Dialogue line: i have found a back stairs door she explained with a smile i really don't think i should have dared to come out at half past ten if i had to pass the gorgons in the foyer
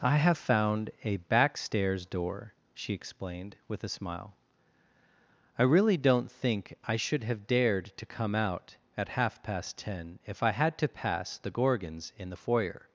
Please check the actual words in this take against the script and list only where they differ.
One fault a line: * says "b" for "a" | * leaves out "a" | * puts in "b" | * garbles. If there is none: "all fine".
all fine